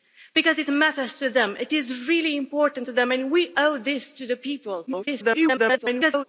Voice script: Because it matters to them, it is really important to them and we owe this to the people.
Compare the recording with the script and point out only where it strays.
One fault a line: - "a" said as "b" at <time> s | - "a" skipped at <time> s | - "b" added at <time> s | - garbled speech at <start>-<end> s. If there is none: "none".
- garbled speech at 4.9-6.2 s